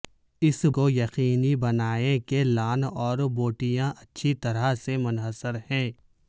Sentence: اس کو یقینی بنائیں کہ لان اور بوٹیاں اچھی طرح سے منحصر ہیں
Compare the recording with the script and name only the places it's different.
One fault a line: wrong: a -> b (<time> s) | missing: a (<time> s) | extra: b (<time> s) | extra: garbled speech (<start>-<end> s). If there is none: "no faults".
no faults